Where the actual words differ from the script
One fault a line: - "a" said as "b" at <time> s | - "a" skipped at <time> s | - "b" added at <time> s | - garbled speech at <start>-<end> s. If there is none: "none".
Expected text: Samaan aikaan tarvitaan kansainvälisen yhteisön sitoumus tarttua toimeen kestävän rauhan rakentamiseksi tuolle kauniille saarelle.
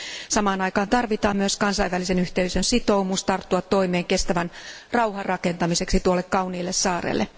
- "myös" added at 1.4 s